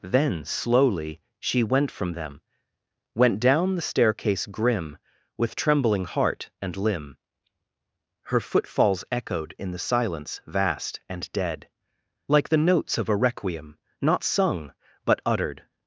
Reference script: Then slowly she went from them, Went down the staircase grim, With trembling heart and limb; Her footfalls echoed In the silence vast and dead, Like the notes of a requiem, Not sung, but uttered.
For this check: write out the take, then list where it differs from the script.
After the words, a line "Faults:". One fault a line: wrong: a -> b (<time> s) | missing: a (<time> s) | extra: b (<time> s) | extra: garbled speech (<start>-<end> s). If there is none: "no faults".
Then slowly she went from them, Went down the staircase grim, With trembling heart and limb; Her footfalls echoed In the silence vast and dead, Like the notes of a requiem, Not sung, but uttered.
Faults:
no faults